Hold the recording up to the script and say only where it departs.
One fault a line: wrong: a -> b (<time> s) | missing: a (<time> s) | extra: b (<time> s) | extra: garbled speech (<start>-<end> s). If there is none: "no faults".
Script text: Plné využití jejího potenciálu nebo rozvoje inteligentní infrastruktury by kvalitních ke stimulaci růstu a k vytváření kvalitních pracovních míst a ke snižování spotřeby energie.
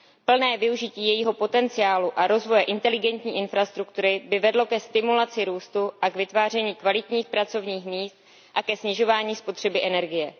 wrong: nebo -> a (2.1 s)
wrong: kvalitních -> vedlo (4.4 s)